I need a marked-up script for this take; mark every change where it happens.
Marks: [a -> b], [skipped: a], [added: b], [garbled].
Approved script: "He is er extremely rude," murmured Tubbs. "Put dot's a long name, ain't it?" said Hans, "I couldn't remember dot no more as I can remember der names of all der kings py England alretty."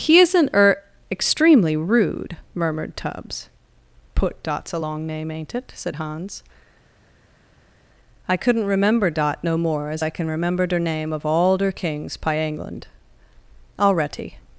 "He [is -> isn't] er extremely rude," murmured Tubbs. "Put dot's a long name, ain't it?" said Hans, "I couldn't remember dot no more as I can remember der [names -> name] of all der kings py England alretty."